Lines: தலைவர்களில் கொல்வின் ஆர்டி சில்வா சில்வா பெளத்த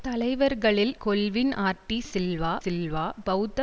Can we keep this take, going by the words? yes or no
yes